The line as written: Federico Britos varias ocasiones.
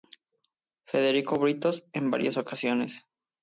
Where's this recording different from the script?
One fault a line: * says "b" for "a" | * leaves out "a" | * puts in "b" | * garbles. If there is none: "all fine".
* puts in "en"